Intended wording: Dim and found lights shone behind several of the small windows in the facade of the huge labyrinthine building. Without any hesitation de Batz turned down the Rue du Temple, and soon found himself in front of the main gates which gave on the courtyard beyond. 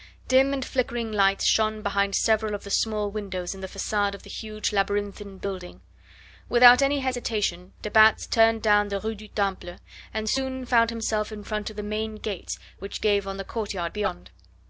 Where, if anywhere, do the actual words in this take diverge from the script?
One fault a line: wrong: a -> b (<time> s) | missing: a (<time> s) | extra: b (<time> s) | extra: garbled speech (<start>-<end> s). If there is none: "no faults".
wrong: found -> flickering (0.7 s)